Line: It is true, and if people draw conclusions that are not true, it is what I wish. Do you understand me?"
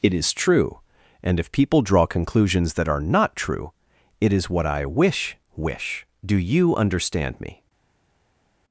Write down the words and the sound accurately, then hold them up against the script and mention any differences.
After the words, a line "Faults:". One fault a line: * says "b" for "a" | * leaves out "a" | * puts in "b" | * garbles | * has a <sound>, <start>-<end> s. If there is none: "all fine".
It is true, and if people draw conclusions that are not true, it is what I wish wish. Do you understand me?"
Faults:
* puts in "wish"